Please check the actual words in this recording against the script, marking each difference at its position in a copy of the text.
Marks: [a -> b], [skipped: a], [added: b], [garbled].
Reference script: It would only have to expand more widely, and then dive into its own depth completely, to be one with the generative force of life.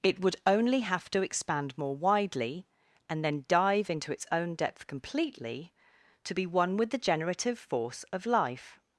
It would only have to expand more widely, and then dive into its own depth completely, to be one with the generative force of life.